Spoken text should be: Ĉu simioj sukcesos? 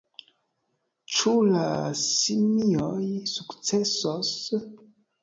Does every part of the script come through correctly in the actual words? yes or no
no